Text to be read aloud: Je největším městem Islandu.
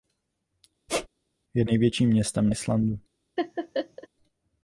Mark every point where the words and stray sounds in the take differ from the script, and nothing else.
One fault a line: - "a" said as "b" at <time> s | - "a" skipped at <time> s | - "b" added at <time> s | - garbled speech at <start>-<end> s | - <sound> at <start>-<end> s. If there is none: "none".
- squeak at 0.9-1.1 s
- laugh at 3.4-4.1 s